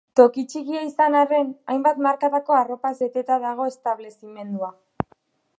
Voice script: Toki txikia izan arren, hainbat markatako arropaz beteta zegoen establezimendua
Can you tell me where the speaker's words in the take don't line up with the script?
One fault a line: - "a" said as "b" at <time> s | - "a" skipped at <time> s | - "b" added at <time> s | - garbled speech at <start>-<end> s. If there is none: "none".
- "zegoen" said as "dago" at 3.5 s